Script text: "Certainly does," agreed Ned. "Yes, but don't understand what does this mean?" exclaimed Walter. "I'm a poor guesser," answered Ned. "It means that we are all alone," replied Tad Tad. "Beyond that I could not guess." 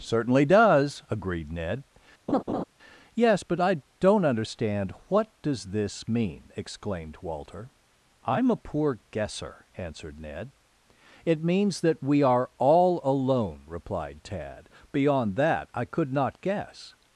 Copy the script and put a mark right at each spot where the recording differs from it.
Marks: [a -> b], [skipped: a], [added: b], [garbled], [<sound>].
"Certainly does," agreed Ned. [laugh] "Yes, but [added: I] don't understand what does this mean?" exclaimed Walter. "I'm a poor guesser," answered Ned. "It means that we are all alone," replied Tad [skipped: Tad.] "Beyond that I could not guess."